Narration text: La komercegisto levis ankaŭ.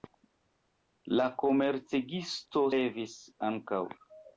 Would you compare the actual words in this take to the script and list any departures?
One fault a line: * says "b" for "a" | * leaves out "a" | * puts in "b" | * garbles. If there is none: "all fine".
all fine